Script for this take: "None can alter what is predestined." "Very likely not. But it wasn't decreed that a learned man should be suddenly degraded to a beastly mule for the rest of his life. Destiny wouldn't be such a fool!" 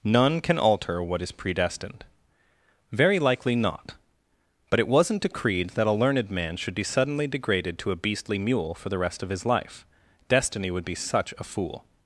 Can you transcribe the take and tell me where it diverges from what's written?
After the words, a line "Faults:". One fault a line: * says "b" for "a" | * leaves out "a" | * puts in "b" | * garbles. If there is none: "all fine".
"None can alter what is predestined." "Very likely not. But it wasn't decreed that a learned man should be suddenly degraded to a beastly mule for the rest of his life. Destiny would be such a fool!"
Faults:
* says "would" for "wouldn't"